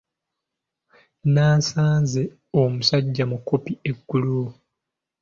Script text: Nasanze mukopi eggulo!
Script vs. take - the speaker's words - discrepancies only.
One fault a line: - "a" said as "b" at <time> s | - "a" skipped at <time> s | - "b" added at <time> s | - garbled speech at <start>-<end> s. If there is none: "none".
- "omusajja" added at 2.6 s